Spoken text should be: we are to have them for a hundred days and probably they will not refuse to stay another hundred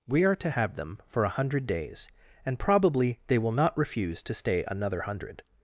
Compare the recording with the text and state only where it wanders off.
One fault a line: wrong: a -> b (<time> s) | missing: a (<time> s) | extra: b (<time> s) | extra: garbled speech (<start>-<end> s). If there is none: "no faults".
no faults